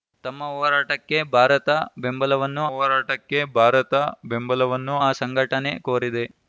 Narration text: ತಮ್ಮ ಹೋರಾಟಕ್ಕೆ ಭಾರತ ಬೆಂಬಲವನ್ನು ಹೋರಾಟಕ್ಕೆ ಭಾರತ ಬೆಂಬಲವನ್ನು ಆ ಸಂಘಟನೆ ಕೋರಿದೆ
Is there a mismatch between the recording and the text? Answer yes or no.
no